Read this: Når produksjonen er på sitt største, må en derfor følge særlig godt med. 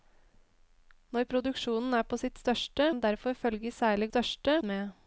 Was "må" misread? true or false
true